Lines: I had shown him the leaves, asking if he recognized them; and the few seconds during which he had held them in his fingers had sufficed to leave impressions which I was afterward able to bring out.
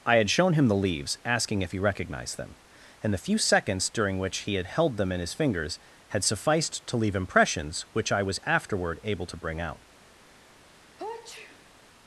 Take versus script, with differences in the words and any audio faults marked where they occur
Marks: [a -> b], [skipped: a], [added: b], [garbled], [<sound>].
I had shown him the leaves, asking if he recognized them; and the few seconds during which he had held them in his fingers had sufficed to leave impressions which I was afterward able to bring out. [sneeze]